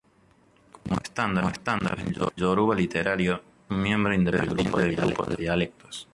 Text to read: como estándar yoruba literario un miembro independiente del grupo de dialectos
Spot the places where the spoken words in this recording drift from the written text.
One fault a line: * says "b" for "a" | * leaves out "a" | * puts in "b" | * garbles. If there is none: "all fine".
all fine